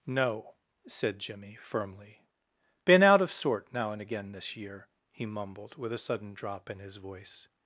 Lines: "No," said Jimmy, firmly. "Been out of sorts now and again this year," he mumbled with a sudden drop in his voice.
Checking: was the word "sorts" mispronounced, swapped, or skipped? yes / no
yes